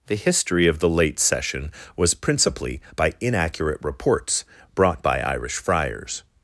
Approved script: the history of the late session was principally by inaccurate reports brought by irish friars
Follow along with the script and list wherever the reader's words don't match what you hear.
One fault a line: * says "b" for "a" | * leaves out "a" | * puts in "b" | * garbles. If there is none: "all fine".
all fine